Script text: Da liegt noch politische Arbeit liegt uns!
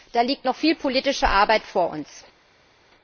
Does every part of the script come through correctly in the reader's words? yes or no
no